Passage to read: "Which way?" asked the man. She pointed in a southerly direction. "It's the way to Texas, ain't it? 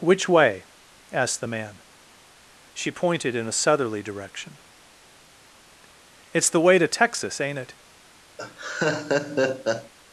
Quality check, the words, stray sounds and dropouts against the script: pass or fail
fail